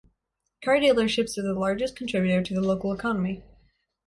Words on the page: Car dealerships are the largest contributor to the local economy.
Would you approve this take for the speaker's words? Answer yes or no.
yes